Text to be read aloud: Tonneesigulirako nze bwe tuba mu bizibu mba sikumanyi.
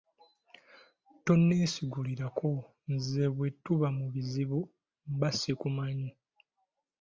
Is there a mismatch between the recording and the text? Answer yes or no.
no